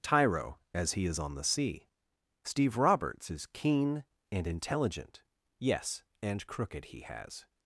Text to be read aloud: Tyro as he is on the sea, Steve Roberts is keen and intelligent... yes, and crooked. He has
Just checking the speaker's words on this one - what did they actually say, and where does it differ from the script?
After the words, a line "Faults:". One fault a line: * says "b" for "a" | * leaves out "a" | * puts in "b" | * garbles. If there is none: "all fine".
Tyro as he is on the sea, Steve Roberts is keen and intelligent... yes, and crooked. He has
Faults:
all fine